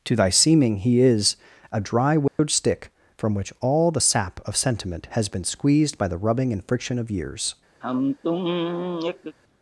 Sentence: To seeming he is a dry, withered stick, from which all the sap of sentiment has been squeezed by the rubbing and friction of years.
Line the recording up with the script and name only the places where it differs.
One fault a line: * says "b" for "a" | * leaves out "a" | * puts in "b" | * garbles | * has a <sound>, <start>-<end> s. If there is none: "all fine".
* puts in "thy"
* has a dropout, 2.3-2.4 s
* has a sigh, 7.8-9.4 s